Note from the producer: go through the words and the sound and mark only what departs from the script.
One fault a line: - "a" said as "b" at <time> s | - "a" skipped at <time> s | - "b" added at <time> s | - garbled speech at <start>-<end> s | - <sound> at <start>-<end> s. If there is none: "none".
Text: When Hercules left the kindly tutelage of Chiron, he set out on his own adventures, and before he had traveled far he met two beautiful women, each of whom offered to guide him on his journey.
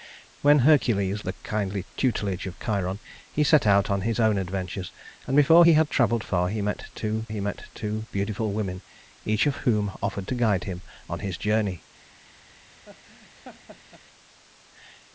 - "left" skipped at 1.2 s
- "he met two" added at 7.3 s
- laugh at 12.8-14.0 s